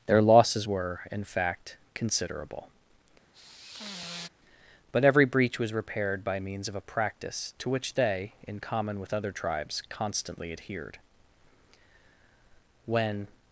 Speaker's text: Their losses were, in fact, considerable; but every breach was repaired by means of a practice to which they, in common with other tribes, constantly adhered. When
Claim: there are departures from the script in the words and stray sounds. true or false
true